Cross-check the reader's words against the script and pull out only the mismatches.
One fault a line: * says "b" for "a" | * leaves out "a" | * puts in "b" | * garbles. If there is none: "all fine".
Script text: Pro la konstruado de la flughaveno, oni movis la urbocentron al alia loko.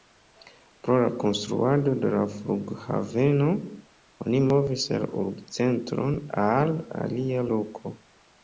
all fine